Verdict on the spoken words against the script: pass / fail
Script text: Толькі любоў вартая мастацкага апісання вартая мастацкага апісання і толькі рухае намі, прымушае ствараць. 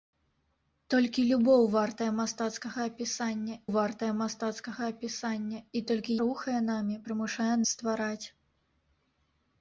pass